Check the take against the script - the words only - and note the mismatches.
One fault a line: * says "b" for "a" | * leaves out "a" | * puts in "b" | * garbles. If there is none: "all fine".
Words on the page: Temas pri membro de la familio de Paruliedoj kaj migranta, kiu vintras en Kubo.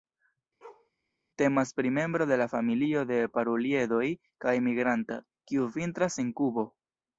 all fine